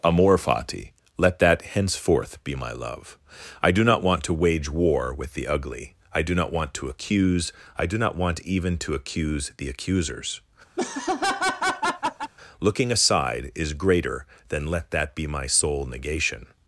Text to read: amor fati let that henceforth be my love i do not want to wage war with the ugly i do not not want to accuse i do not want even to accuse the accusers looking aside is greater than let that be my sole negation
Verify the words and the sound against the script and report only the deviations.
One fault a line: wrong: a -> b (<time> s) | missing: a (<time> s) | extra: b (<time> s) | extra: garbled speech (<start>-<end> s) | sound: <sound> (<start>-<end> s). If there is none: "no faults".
missing: not (6.5 s)
sound: laugh (10.8-12.3 s)